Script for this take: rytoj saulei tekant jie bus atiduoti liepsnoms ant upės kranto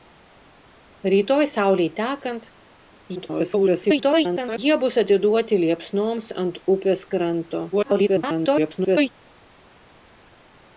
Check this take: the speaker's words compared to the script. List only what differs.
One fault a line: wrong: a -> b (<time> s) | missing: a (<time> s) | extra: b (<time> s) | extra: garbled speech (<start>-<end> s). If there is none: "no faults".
extra: garbled speech (3.2-4.6 s)
extra: garbled speech (7.7-9.1 s)